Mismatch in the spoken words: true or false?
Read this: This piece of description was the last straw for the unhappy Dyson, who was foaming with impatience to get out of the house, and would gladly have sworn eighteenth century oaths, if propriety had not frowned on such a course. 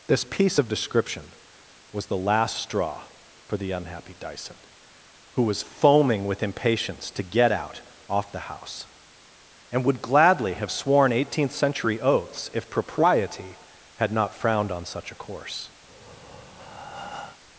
true